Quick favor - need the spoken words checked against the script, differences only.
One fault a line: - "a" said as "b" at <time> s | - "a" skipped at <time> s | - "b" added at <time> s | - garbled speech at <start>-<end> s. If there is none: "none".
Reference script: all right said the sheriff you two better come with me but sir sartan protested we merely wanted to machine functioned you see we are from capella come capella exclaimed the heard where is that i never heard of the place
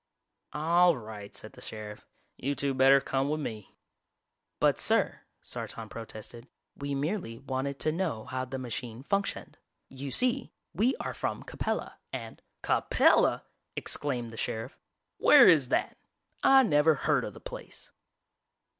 - "know how the" added at 7.9 s
- "come" said as "and" at 12.1 s
- "heard" said as "sheriff" at 14.4 s